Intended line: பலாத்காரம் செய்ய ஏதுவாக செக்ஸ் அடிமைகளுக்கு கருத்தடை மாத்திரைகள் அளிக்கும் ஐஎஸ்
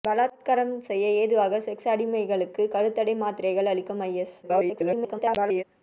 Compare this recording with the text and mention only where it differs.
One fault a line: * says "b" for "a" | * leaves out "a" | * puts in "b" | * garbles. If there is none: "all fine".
* garbles